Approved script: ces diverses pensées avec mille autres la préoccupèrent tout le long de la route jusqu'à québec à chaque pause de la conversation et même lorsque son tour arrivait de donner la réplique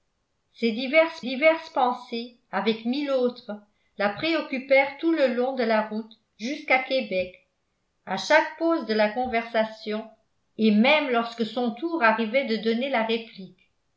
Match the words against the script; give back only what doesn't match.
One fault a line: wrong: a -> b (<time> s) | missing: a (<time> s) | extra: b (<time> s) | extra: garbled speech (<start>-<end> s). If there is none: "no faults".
extra: diverses (1.2 s)